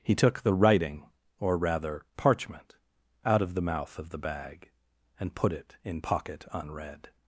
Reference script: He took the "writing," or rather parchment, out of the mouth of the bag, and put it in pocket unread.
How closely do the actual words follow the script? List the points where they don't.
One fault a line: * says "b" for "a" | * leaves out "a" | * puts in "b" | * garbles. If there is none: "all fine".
all fine